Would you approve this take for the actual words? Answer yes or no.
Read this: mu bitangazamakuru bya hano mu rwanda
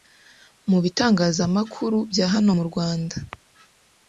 yes